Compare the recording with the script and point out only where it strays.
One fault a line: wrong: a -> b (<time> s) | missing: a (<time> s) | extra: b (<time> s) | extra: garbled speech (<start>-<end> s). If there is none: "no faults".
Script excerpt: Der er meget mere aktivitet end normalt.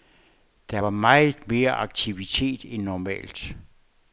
wrong: er -> var (0.7 s)